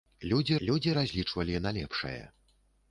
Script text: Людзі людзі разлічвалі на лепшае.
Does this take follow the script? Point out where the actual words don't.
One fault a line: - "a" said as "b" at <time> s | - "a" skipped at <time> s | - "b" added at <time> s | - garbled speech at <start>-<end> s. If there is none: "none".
none